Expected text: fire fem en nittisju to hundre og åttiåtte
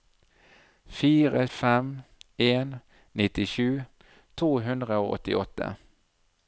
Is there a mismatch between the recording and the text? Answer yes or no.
no